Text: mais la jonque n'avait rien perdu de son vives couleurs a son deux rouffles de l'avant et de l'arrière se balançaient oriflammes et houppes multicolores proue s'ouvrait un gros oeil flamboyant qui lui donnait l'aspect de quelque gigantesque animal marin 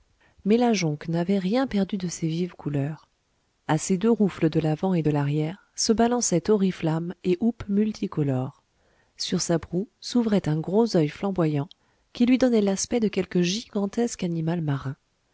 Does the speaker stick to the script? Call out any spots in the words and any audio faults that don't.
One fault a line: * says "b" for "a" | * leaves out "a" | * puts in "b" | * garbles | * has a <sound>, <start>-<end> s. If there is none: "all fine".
* says "ses" for "son"
* says "ses" for "son"
* puts in "sur sa"